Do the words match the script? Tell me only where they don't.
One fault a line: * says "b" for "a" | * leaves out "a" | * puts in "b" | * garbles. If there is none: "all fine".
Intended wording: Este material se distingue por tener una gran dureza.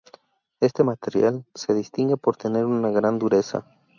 all fine